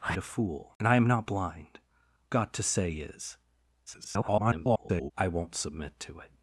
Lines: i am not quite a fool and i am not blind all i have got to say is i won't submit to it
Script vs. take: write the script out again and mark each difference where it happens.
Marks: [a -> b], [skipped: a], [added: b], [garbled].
i [skipped: am not quite] a fool and i am not blind [skipped: all i have] got to say is [garbled] i won't submit to it